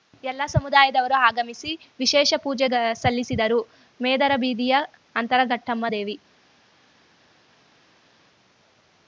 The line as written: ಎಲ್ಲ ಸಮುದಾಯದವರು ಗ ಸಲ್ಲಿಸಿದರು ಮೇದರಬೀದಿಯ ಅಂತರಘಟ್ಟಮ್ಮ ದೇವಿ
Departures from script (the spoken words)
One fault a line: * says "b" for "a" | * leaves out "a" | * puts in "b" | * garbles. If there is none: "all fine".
* puts in "ಆಗಮಿಸಿ ವಿಶೇಷ ಪೂಜೆ"